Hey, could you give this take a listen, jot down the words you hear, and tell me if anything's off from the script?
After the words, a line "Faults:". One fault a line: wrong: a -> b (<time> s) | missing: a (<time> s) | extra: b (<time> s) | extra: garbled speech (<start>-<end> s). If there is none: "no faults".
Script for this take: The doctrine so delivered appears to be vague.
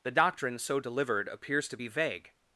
The doctrine so delivered appears to be vague.
Faults:
no faults